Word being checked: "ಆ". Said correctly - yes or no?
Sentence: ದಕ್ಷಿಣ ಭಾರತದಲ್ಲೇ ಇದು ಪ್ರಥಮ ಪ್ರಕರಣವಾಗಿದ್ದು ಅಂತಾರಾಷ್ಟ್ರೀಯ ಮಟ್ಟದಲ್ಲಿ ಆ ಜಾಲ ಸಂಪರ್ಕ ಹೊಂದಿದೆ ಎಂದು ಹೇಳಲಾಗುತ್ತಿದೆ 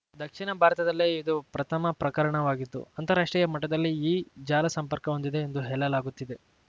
no